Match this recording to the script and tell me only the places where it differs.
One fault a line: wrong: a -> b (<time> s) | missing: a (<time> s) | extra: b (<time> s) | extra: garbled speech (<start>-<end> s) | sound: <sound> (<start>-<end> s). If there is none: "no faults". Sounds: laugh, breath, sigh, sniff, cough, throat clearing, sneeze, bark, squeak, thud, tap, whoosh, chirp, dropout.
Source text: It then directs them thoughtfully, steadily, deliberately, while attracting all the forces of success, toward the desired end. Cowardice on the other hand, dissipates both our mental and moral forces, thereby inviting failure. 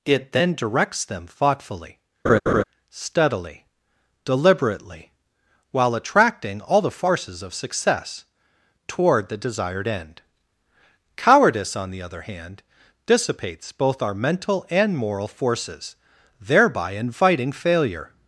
sound: laugh (2.2-2.6 s)